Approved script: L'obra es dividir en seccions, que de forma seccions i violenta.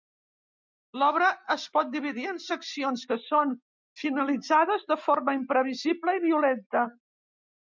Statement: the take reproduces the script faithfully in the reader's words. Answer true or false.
false